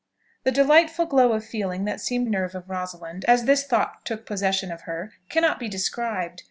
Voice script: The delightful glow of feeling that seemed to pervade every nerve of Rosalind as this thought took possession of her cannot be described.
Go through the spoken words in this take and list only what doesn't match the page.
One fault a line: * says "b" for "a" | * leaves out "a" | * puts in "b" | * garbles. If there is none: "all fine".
* leaves out "to pervade every"